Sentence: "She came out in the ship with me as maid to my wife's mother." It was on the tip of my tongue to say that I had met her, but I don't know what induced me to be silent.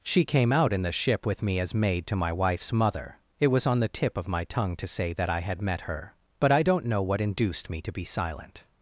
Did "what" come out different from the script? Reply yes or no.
no